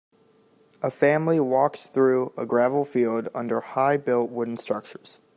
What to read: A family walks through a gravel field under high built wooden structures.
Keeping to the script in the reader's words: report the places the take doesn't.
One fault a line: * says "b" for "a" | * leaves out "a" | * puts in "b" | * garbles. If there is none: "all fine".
all fine